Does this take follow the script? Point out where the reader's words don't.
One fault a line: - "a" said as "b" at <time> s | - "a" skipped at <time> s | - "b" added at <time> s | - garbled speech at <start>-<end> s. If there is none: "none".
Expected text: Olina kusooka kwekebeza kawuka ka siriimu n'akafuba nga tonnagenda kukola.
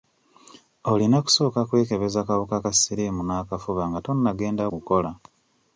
none